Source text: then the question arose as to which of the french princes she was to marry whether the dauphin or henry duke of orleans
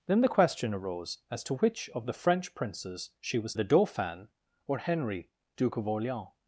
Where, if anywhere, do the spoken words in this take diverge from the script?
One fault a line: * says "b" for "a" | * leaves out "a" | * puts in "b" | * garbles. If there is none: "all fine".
* leaves out "to marry whether"